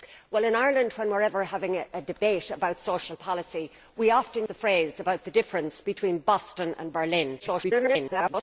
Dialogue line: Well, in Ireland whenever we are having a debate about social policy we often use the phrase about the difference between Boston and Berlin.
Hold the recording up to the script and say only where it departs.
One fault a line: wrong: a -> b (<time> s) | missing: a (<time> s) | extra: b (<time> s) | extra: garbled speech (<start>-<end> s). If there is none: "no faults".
missing: use (4.5 s)
extra: garbled speech (7.4-8.4 s)